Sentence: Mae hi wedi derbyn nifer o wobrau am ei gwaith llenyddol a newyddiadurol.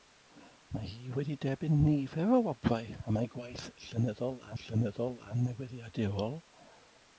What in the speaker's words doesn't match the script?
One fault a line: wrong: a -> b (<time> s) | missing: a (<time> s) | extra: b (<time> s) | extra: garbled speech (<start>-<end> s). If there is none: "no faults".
extra: llenyddol a (4.6 s)